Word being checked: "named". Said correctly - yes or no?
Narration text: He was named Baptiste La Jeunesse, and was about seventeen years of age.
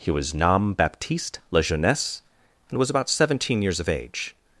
no